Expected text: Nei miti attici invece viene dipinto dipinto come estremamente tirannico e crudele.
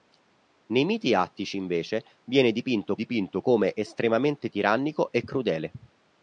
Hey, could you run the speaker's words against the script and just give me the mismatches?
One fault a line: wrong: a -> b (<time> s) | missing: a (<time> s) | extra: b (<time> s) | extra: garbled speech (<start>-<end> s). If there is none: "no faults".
no faults